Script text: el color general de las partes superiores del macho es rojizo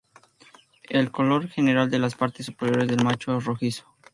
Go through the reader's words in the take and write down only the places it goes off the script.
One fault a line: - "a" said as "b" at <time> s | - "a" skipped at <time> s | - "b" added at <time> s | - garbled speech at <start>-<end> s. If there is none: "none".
none